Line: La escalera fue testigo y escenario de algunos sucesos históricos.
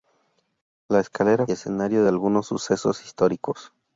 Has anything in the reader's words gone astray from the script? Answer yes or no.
yes